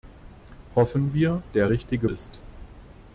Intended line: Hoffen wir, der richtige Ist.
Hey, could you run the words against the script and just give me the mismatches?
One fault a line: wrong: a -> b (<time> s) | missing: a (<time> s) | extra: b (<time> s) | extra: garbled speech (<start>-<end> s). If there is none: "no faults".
no faults